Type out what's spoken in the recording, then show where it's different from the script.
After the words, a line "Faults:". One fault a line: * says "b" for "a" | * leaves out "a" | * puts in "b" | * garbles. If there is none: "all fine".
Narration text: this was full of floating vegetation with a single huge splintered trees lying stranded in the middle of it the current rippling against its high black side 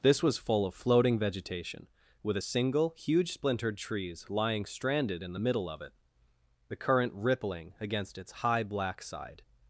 this was full of floating vegetation with a single huge splintered trees lying stranded in the middle of it the current rippling against its high black side
Faults:
all fine